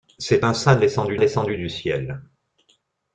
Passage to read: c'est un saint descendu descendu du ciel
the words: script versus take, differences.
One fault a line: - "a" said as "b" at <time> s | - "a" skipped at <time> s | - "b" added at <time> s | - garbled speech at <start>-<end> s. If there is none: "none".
none